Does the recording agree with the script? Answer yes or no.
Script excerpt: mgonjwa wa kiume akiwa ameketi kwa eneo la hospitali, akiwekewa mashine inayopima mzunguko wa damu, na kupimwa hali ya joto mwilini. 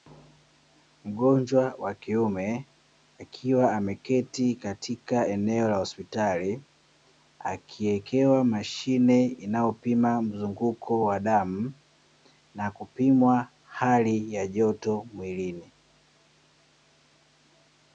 no